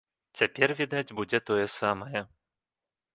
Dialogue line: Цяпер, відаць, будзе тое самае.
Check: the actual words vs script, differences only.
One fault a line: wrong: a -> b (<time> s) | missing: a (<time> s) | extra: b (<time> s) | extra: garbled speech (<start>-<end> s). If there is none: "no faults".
no faults